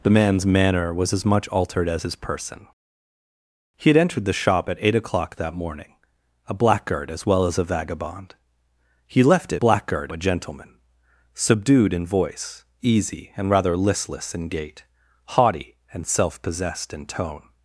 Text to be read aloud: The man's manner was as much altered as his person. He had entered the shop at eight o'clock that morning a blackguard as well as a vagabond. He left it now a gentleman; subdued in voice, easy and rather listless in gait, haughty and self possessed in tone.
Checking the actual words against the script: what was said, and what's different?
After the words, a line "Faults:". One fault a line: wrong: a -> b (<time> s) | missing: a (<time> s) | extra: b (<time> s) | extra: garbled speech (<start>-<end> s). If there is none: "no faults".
The man's manner was as much altered as his person. He had entered the shop at eight o'clock that morning a blackguard as well as a vagabond. He left it blackguard a gentleman; subdued in voice, easy and rather listless in gait, haughty and self possessed in tone.
Faults:
wrong: now -> blackguard (9.5 s)